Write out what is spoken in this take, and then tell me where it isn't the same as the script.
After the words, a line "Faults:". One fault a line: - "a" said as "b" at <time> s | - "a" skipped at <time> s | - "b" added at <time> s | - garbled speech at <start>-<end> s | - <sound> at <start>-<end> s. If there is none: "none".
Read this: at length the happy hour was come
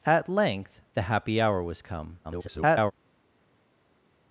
at length the happy hour was come [garbled]
Faults:
- garbled speech at 2.2-2.9 s